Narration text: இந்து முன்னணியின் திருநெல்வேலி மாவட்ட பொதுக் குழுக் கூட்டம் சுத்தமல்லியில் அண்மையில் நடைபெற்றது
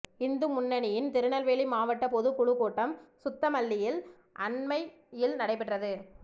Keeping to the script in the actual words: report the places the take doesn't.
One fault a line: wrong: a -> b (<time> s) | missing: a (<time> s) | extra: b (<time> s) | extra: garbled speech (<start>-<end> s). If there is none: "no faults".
no faults